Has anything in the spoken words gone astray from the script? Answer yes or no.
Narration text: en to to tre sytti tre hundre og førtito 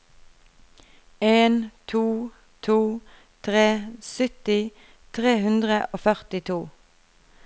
no